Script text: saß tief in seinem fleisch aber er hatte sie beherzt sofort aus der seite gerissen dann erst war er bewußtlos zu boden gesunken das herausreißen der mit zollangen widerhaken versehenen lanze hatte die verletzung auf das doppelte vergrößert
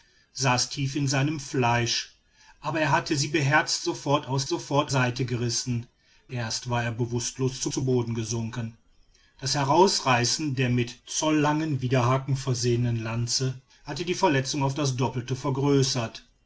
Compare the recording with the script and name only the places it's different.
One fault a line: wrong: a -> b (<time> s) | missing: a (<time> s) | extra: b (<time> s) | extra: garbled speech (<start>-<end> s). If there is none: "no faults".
wrong: der -> sofort (4.5 s)
missing: dann (5.9 s)
extra: zu (7.7 s)